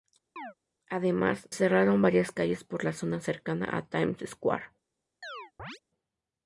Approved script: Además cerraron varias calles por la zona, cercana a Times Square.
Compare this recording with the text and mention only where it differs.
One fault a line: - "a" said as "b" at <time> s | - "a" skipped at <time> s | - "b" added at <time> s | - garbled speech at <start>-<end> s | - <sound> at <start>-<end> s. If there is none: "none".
- chirp at 0.4-0.5 s
- chirp at 5.2-5.8 s